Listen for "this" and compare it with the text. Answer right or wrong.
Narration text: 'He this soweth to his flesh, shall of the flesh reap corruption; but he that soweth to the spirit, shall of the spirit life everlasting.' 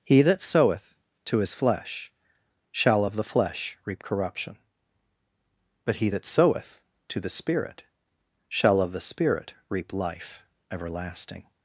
wrong